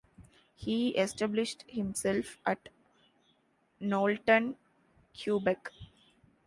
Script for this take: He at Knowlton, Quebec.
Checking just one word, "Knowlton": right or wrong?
right